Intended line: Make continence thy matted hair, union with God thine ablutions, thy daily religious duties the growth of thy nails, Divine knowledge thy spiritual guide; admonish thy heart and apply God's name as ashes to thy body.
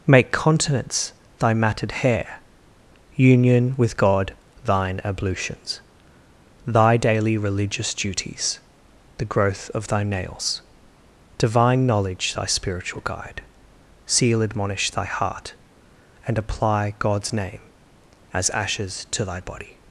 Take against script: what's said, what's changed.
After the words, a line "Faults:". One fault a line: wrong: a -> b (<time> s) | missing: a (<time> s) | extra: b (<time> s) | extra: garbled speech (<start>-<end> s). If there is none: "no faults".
Make continence thy matted hair, union with God thine ablutions, thy daily religious duties the growth of thy nails, Divine knowledge thy spiritual guide; seal admonish thy heart and apply God's name as ashes to thy body.
Faults:
extra: seal (14.1 s)